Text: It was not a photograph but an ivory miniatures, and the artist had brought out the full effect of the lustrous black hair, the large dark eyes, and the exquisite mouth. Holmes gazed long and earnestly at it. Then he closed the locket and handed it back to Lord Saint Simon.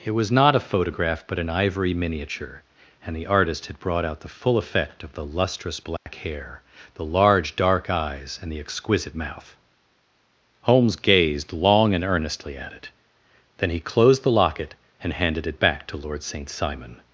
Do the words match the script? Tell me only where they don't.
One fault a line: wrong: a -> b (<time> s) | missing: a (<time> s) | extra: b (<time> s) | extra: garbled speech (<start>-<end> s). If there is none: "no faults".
wrong: miniatures -> miniature (1.9 s)